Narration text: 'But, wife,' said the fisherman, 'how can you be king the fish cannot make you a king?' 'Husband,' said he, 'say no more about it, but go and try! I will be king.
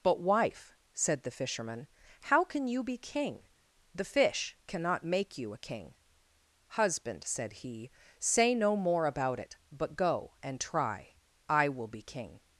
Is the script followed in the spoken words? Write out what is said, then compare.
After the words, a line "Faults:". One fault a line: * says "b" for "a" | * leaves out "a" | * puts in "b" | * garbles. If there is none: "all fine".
'But, wife,' said the fisherman, 'how can you be king the fish cannot make you a king?' 'Husband,' said he, 'say no more about it, but go and try! I will be king.
Faults:
all fine